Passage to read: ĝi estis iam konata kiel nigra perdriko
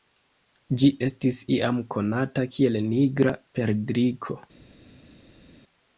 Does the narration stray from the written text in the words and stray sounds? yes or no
no